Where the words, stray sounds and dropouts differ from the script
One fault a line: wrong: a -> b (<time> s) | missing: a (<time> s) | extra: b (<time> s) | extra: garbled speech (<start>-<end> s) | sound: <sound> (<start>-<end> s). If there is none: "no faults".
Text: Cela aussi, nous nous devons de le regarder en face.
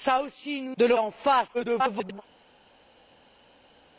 missing: nous devons (0.7 s)
missing: regarder (0.9 s)
extra: garbled speech (1.5-2.2 s)